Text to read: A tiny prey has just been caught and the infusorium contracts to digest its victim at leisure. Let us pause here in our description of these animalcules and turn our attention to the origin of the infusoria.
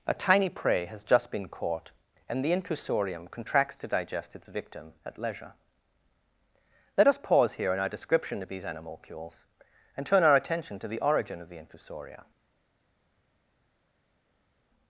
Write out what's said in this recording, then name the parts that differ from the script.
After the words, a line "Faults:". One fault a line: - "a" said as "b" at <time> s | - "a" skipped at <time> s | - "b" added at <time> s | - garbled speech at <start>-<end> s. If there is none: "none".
A tiny prey has just been caught and the infusorium contracts to digest its victim at leisure. Let us pause here in our description of these animalcules and turn our attention to the origin of the infusoria.
Faults:
none